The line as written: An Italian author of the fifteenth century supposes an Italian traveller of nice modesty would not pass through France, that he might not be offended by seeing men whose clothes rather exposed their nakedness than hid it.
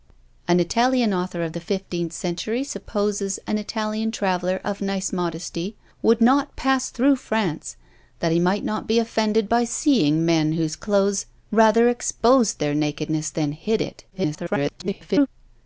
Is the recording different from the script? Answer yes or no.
yes